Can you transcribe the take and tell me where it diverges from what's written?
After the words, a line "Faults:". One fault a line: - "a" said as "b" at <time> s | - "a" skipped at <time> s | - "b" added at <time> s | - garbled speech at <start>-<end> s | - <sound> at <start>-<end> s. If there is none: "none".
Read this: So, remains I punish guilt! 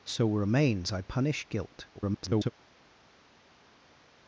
So, remains I punish guilt! [garbled]
Faults:
- garbled speech at 1.9-2.5 s